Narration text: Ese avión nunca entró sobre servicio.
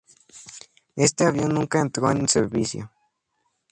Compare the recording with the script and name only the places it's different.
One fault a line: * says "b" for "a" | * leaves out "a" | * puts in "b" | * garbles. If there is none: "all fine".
* says "Este" for "Ese"
* says "en" for "sobre"